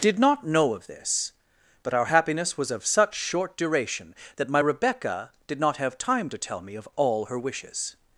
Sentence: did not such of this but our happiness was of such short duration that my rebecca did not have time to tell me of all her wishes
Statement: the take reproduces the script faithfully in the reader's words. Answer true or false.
false